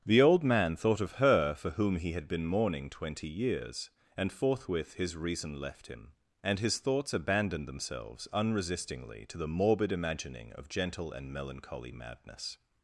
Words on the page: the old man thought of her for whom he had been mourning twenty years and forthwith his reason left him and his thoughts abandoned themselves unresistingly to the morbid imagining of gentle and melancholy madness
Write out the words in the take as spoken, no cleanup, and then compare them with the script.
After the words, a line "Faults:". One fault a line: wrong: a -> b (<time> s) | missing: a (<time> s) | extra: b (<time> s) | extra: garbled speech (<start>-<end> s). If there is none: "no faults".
the old man thought of her for whom he had been mourning twenty years and forthwith his reason left him and his thoughts abandoned themselves unresistingly to the morbid imagining of gentle and melancholy madness
Faults:
no faults